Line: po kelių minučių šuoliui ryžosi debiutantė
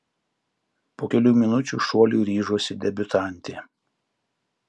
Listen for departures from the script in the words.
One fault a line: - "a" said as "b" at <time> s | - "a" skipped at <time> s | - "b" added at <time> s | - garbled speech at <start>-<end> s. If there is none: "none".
none